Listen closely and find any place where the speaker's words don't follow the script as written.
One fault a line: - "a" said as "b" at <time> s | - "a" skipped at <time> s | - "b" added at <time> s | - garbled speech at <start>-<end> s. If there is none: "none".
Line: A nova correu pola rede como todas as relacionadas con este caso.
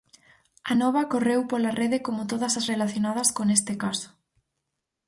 none